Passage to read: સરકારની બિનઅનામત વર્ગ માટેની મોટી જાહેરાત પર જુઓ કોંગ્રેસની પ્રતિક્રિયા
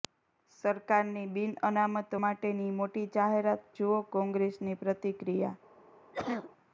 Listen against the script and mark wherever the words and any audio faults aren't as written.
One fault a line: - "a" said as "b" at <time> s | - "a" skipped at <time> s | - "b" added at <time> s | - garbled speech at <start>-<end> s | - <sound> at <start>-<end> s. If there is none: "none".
- "વર્ગ" skipped at 2.1 s
- "પર" skipped at 3.7 s
- cough at 6.1-6.5 s